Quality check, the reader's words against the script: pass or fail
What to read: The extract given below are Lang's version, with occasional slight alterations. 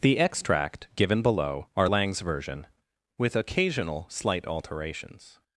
pass